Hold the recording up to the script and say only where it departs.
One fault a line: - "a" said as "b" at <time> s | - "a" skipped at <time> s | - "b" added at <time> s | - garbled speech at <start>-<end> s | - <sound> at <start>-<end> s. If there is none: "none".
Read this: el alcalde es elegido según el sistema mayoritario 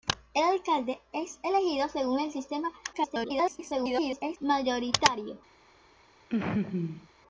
- garbled speech at 2.9-4.4 s
- laugh at 6.3-7.1 s